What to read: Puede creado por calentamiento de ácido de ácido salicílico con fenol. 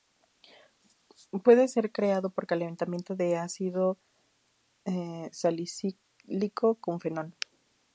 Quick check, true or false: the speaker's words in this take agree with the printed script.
false